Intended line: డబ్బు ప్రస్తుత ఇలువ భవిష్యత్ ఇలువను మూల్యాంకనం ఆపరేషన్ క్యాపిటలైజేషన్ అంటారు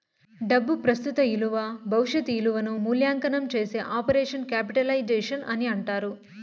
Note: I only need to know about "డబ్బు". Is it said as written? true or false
true